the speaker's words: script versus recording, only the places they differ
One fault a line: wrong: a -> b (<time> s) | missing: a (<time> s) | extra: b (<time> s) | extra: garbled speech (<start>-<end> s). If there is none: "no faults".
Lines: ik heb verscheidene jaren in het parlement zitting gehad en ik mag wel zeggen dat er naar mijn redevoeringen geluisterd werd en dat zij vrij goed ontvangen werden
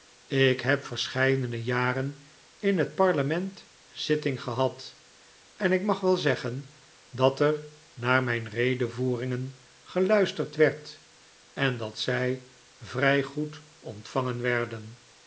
no faults